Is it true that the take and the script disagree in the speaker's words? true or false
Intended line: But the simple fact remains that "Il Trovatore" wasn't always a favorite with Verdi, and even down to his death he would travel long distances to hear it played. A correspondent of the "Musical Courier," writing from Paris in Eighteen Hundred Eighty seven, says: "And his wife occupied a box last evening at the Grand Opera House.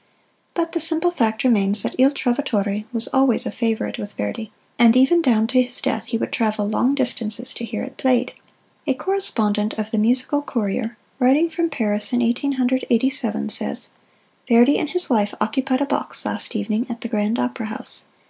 true